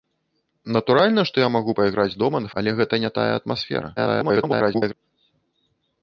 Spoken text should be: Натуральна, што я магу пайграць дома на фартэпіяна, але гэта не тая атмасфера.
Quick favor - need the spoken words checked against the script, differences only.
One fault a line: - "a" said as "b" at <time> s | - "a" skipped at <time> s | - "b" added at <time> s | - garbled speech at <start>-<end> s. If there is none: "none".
- "фартэпіяна" skipped at 2.5 s
- garbled speech at 4.0-4.9 s